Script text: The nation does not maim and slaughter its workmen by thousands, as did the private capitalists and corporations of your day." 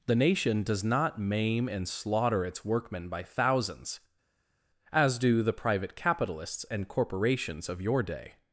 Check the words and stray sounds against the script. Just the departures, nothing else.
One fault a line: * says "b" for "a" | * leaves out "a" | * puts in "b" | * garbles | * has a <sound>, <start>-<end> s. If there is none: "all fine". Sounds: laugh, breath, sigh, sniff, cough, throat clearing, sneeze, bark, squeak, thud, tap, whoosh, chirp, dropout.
* says "do" for "did"